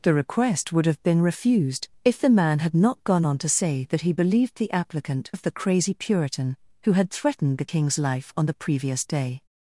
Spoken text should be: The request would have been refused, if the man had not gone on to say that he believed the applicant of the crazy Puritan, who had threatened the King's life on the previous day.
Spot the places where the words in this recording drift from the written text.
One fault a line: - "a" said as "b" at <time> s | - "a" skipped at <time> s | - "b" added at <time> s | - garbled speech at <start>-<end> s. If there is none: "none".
none